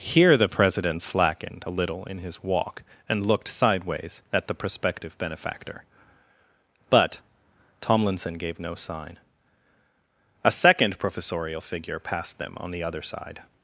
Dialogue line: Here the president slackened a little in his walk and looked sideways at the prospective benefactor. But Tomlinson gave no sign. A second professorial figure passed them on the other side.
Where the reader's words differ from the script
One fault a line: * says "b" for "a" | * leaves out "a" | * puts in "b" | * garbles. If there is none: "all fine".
all fine